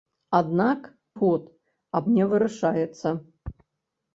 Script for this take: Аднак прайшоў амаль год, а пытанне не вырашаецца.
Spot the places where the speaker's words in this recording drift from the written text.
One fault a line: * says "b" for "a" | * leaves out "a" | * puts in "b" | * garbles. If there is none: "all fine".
* leaves out "прайшоў амаль"
* leaves out "пытанне"